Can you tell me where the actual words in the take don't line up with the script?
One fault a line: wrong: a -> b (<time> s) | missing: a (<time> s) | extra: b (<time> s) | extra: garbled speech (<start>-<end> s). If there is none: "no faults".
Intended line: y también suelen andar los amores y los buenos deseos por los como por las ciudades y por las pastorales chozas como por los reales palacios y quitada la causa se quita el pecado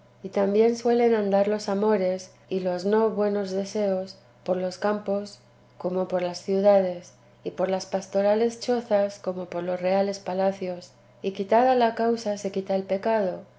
extra: no (2.9 s)
extra: campos (4.8 s)